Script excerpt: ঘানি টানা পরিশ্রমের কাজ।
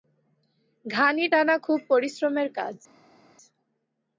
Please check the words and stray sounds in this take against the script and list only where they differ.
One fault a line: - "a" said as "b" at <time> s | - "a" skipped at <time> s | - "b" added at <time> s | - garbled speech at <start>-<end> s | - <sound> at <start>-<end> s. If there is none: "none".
- "খুব" added at 1.7 s